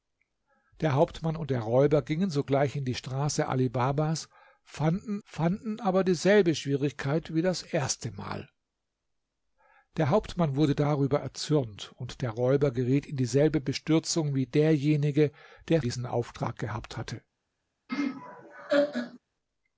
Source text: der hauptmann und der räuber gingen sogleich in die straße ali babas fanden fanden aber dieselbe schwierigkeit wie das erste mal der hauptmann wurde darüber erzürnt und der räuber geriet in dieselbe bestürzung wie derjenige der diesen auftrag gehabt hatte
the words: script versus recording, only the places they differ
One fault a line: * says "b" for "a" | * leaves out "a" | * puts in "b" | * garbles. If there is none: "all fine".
all fine